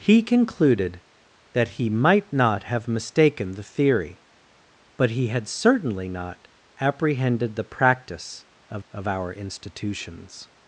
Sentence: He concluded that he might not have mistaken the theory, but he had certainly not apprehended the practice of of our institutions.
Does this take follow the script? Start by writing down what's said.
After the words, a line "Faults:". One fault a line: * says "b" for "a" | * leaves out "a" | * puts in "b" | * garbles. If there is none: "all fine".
He concluded that he might not have mistaken the theory, but he had certainly not apprehended the practice of of our institutions.
Faults:
all fine